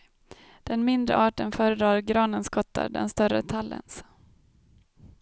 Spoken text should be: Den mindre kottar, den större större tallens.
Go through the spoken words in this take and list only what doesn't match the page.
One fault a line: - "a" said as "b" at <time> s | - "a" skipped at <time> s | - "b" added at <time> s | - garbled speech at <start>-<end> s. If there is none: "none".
- "arten föredrar granens" added at 1.1 s
- "större" skipped at 3.4 s